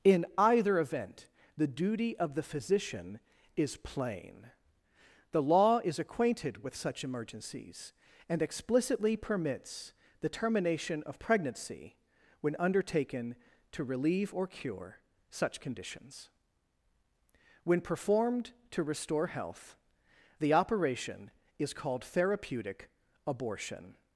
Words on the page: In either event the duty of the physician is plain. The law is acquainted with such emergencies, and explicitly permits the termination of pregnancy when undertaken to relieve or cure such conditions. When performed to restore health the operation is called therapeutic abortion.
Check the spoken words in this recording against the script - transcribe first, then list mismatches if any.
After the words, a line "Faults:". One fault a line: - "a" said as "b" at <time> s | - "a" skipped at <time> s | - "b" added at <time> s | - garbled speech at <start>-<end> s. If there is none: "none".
In either event the duty of the physician is plain. The law is acquainted with such emergencies, and explicitly permits the termination of pregnancy when undertaken to relieve or cure such conditions. When performed to restore health the operation is called therapeutic abortion.
Faults:
none